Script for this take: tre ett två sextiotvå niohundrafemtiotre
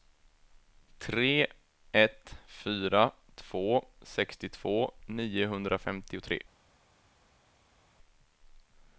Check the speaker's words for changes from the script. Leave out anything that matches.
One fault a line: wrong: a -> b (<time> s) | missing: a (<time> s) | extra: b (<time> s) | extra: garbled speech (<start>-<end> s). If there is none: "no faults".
extra: fyra (2.5 s)